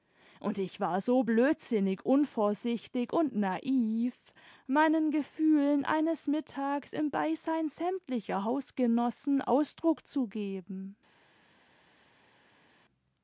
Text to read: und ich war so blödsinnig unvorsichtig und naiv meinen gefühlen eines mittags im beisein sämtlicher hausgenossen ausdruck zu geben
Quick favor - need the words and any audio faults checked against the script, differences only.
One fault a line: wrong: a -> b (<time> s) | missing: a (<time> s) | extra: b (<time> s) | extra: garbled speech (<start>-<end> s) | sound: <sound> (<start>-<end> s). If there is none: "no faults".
no faults